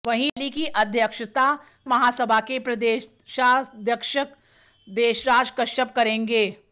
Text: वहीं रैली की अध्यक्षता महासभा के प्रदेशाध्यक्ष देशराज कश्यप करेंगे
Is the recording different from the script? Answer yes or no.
no